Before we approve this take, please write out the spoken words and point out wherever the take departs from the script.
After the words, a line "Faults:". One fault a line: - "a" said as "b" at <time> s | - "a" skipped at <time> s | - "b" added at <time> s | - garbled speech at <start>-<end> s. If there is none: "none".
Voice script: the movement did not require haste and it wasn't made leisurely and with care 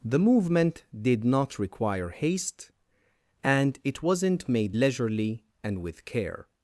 the movement did not require haste and it wasn't made leisurely and with care
Faults:
none